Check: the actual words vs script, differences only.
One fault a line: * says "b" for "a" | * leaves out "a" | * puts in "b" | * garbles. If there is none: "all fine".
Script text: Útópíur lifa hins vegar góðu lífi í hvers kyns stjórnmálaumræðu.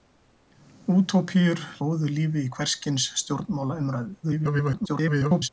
* leaves out "lifa hins vegar"
* garbles